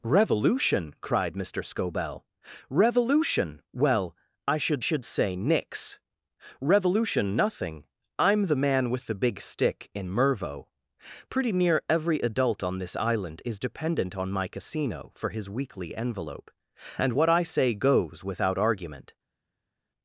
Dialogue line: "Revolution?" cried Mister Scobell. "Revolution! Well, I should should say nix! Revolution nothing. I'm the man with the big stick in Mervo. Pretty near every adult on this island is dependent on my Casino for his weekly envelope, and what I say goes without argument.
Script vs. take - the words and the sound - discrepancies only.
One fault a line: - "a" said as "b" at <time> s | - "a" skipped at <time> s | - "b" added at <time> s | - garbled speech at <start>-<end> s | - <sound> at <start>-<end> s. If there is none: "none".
none